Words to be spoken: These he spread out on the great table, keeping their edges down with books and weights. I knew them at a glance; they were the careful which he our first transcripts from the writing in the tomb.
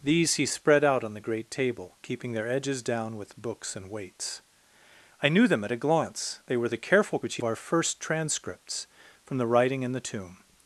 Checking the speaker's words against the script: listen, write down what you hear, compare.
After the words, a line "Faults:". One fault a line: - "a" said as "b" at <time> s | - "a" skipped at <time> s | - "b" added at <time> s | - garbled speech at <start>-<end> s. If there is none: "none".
These he spread out on the great table, keeping their edges down with books and weights. I knew them at a glance; they were the careful which he our first transcripts from the writing in the tomb.
Faults:
none